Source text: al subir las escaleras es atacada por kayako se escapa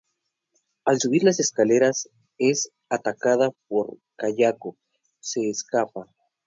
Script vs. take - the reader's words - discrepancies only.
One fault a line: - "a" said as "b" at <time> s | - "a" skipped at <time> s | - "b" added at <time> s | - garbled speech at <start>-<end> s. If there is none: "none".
none